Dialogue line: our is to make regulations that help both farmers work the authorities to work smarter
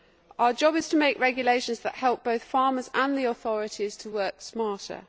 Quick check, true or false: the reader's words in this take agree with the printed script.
false